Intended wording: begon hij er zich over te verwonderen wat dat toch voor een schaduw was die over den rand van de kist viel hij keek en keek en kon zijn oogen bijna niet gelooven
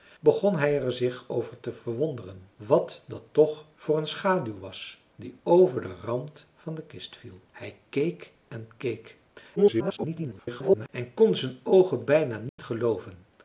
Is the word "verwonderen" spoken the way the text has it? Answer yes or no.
yes